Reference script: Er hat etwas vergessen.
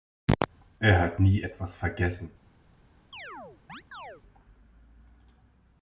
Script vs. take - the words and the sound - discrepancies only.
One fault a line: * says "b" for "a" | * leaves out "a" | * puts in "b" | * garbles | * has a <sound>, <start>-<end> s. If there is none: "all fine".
* puts in "nie"
* has a chirp, 3.1-4.2 s